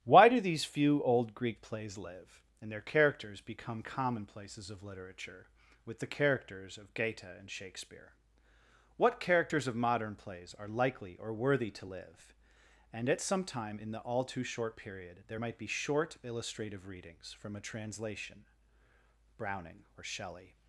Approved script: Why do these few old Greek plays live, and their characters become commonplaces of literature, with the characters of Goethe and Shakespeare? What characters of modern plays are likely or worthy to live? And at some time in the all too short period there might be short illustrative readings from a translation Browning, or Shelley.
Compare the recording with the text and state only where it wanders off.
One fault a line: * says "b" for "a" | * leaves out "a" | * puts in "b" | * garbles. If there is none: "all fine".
all fine